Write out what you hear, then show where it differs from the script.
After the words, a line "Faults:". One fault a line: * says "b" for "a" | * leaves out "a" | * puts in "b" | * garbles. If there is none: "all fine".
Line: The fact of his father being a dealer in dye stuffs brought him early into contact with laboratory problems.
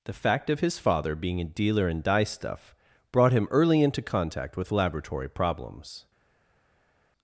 The fact of his father being a dealer in dye stuff brought him early into contact with laboratory problems.
Faults:
* says "stuff" for "stuffs"